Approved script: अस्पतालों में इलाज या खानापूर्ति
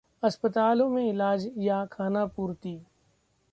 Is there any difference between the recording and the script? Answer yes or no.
no